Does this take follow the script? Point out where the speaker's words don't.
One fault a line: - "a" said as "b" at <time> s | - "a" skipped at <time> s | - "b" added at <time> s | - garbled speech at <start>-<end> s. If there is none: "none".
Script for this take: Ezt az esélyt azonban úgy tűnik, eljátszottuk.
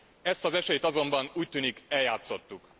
none